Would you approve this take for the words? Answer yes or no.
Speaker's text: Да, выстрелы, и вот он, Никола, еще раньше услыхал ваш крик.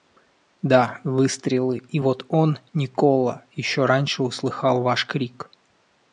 yes